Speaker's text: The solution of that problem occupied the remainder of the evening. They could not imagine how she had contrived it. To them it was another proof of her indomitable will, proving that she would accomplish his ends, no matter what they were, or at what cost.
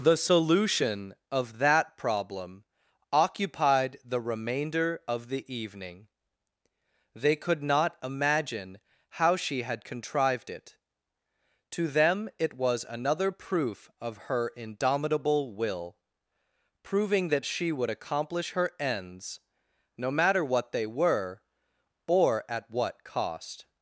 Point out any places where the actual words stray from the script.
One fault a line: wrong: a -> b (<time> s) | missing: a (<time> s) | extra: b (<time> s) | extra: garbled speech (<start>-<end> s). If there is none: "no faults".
wrong: his -> her (18.5 s)